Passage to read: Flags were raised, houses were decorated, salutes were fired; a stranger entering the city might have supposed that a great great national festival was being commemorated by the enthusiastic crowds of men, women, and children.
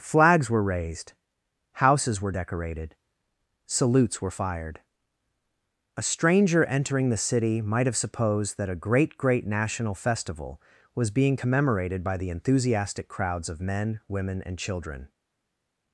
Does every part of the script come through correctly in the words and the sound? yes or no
yes